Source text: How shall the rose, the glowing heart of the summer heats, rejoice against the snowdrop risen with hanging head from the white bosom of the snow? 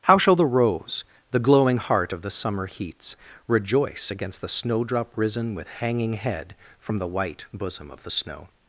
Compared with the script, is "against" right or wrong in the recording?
right